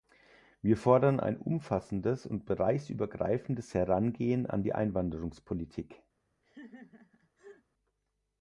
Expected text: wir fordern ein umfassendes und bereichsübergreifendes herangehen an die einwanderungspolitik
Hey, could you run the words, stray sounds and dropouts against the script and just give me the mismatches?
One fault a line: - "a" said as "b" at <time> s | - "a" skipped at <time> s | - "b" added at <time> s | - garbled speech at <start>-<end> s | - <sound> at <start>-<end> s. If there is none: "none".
- laugh at 6.4-7.6 s